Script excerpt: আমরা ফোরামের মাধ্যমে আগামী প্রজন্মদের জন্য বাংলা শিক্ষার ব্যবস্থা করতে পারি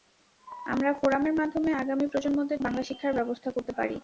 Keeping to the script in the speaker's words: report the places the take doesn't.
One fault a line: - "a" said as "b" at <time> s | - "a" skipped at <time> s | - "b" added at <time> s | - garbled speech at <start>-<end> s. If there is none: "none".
- "জন্য" skipped at 2.6 s